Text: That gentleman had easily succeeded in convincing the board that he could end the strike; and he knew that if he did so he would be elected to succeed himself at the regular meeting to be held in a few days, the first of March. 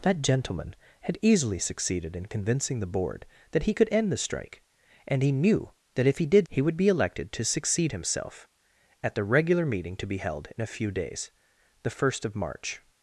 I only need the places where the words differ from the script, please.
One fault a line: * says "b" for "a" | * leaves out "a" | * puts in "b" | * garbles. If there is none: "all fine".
* leaves out "so"